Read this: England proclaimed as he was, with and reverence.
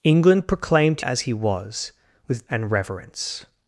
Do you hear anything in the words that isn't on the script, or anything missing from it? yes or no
no